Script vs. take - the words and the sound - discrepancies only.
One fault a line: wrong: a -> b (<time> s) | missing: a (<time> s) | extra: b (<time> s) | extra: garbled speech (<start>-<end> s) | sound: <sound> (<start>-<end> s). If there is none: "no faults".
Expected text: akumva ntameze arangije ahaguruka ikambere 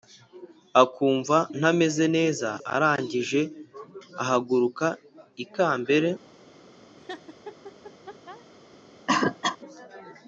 extra: neza (2.2 s)
sound: laugh (7.0-8.5 s)
sound: cough (9.1-9.6 s)